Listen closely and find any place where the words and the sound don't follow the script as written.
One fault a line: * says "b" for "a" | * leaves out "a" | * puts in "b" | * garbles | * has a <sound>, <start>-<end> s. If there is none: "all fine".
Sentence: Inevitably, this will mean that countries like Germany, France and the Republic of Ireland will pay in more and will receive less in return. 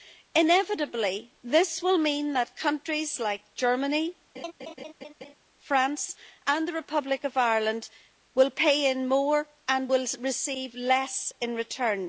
* has a laugh, 4.3-5.3 s